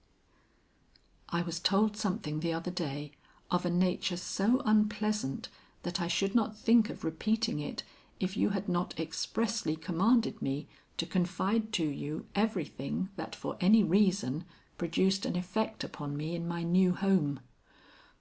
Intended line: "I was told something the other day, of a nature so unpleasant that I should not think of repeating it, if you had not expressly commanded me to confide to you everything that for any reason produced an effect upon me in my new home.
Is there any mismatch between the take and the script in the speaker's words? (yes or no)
no